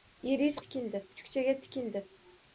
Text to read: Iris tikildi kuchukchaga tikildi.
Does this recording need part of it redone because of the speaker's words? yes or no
no